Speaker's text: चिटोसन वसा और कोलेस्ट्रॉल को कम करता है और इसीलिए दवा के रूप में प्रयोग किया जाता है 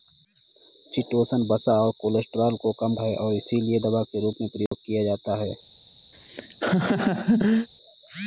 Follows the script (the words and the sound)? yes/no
no